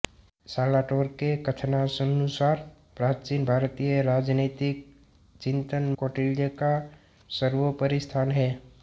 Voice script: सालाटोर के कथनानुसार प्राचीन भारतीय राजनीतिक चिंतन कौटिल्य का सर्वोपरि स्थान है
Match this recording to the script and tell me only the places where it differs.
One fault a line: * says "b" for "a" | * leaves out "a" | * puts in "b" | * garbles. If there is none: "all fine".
all fine